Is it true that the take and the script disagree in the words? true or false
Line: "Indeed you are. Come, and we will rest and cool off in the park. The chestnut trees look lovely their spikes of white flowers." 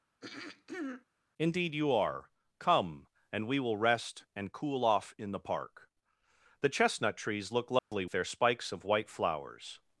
false